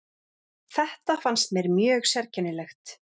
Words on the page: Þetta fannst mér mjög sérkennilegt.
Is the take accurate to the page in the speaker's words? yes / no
yes